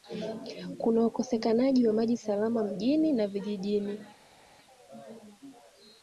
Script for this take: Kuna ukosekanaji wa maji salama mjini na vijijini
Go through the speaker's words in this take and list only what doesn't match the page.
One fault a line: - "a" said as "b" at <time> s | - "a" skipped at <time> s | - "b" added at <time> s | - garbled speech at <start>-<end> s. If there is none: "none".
none